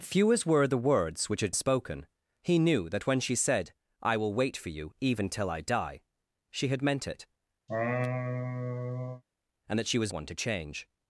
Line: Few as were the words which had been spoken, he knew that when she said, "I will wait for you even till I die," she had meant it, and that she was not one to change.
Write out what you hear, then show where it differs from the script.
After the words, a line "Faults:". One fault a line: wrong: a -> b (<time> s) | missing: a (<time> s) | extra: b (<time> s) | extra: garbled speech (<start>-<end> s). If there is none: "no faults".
Few as were the words which had spoken, he knew that when she said, "I will wait for you even till I die," she had meant it, and that she was one to change.
Faults:
missing: been (1.5 s)
missing: not (10.1 s)